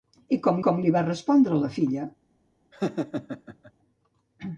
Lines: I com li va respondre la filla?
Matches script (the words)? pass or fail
fail